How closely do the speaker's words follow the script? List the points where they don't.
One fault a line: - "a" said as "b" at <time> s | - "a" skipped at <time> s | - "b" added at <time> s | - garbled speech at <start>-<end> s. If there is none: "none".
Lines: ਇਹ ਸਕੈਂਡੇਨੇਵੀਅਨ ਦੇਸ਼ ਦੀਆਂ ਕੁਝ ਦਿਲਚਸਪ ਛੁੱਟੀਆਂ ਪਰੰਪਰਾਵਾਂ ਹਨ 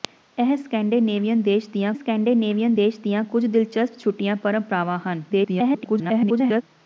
- "ਸਕੈਂਡੇਨੇਵੀਅਨ ਦੇਸ਼ ਦੀਆਂ" added at 1.9 s
- garbled speech at 5.3-6.6 s